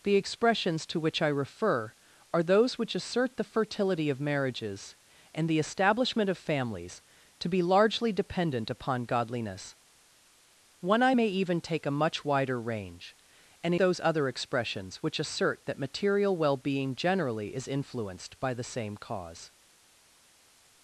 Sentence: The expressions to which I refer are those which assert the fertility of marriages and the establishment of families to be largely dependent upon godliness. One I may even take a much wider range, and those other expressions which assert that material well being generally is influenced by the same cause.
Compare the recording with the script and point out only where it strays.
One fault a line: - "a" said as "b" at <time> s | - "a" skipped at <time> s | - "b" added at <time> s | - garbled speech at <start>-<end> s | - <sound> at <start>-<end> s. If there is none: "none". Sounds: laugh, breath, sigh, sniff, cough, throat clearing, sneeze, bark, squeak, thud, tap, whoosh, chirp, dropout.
none